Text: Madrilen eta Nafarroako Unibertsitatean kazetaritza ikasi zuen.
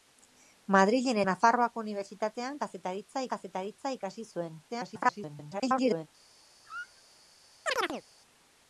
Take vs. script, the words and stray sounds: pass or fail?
fail